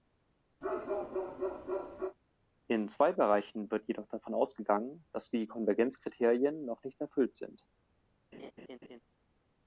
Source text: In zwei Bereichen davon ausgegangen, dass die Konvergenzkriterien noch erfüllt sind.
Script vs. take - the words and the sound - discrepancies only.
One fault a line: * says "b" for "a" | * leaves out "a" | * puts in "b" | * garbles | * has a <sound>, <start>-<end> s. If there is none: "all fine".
* has a bark, 0.6-2.2 s
* puts in "wird jedoch"
* puts in "nicht"
* has a laugh, 8.3-9.0 s